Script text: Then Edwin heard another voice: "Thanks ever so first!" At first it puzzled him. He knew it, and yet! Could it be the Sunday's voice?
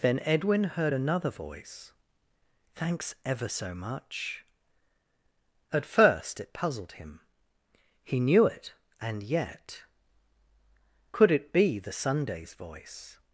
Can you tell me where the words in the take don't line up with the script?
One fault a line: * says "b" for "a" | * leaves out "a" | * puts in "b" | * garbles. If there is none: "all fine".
* says "much" for "first"